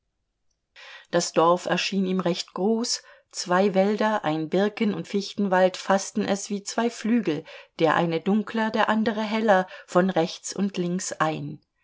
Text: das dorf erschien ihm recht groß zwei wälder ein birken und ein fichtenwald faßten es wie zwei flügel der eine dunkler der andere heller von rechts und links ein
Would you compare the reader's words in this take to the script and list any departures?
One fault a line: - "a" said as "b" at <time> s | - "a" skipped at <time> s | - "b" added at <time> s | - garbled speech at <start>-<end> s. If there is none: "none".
- "ein" skipped at 5.1 s